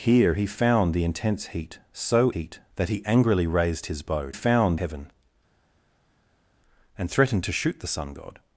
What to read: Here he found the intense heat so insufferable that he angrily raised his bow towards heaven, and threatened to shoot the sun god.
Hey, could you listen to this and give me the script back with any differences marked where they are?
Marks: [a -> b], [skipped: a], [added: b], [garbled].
Here he found the intense heat so [insufferable -> heat] that he angrily raised his bow [towards -> found] heaven, and threatened to shoot the sun god.